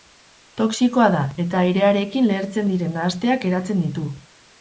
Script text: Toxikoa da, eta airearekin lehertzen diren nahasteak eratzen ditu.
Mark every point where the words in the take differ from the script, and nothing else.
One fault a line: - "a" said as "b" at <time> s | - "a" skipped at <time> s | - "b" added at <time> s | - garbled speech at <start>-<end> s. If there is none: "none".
none